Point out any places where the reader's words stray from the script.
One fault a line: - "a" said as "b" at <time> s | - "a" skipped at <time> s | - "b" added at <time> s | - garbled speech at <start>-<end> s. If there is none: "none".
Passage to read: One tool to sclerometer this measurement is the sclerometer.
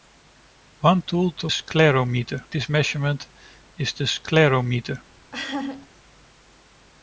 none